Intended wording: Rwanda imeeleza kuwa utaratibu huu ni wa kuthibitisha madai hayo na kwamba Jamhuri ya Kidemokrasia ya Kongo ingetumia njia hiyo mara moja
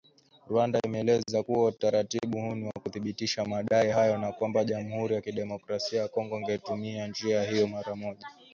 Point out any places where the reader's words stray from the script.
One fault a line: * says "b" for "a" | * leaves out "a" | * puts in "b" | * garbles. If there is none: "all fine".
all fine